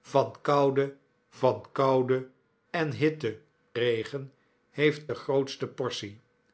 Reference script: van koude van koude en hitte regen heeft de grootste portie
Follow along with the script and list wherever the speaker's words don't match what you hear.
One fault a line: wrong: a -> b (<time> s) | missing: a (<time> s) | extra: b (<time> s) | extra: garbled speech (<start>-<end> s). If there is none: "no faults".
no faults